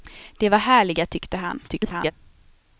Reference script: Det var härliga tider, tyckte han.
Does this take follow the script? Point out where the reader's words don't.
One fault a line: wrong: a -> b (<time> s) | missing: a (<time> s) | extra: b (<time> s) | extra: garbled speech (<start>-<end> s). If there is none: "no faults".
missing: tider (1.1 s)
extra: garbled speech (1.7-2.1 s)